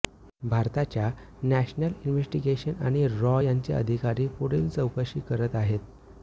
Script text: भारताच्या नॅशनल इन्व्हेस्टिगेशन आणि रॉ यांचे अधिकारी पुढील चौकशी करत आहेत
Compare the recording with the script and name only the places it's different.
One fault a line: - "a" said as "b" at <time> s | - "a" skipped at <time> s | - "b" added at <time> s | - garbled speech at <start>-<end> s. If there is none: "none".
none